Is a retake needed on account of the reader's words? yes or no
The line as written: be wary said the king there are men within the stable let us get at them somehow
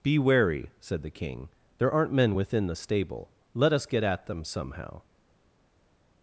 yes